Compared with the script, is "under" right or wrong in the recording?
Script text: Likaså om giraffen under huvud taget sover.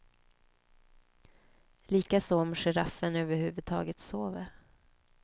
wrong